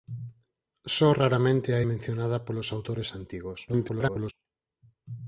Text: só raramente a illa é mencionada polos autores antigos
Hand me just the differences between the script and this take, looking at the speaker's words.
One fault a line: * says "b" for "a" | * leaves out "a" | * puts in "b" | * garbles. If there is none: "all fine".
* leaves out "illa"
* garbles